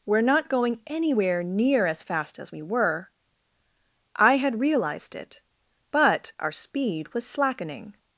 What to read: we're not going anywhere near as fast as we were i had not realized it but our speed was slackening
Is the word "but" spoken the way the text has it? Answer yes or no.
yes